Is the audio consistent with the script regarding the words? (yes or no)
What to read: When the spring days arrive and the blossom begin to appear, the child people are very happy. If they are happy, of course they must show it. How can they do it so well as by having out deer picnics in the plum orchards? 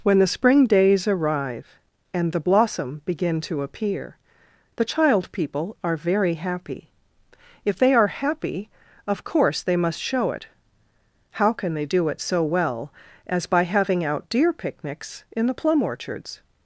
yes